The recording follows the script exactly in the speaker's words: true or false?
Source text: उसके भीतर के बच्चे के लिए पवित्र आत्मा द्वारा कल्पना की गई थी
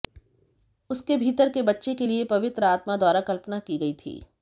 true